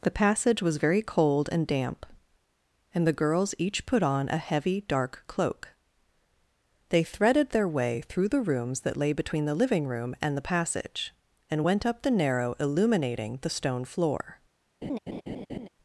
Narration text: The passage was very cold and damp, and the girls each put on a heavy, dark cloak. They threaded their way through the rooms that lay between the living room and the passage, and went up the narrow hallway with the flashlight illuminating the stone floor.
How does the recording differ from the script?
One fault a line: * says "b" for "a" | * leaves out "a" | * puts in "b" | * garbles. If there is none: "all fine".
* leaves out "hallway with the flashlight"